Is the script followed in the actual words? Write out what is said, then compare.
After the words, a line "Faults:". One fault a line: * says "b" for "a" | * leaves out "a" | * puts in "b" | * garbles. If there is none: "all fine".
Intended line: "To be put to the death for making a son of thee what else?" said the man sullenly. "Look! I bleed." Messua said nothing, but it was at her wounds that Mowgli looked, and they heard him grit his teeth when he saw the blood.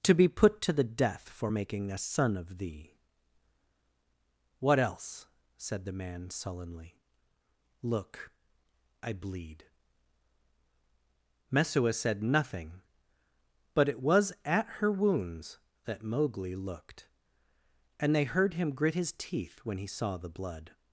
"To be put to the death for making a son of thee what else?" said the man sullenly. "Look! I bleed." Messua said nothing, but it was at her wounds that Mowgli looked, and they heard him grit his teeth when he saw the blood.
Faults:
all fine